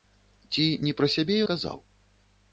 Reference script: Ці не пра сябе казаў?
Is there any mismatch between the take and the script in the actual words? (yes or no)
no